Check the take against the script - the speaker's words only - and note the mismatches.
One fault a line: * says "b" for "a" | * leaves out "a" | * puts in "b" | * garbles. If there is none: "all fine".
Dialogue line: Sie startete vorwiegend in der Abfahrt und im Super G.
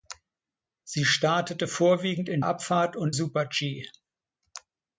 * leaves out "der"
* leaves out "im"